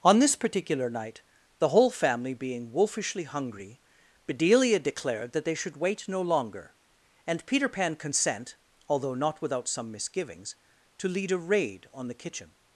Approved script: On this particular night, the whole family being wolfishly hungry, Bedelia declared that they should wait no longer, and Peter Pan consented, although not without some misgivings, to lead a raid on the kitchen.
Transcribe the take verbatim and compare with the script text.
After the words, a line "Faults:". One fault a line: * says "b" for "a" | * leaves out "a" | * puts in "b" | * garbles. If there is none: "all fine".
On this particular night, the whole family being wolfishly hungry, Bedelia declared that they should wait no longer, and Peter Pan consent, although not without some misgivings, to lead a raid on the kitchen.
Faults:
* says "consent" for "consented"